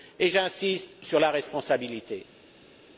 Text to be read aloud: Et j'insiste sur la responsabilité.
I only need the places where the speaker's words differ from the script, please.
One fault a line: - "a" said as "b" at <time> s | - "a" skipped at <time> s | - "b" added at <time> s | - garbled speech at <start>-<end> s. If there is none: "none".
none